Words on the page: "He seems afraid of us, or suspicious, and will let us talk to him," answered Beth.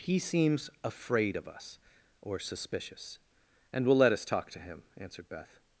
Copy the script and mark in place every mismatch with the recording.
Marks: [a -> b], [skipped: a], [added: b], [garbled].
"He seems afraid of us, or suspicious, and will let us talk to him," answered Beth.